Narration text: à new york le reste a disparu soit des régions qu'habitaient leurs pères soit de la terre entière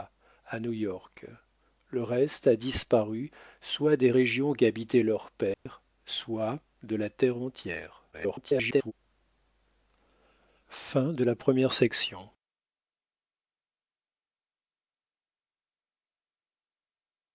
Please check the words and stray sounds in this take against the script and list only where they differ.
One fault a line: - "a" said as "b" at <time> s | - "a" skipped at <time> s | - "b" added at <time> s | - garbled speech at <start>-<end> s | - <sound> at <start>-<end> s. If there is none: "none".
- dropout at 5.5-5.7 s
- garbled speech at 8.1-8.9 s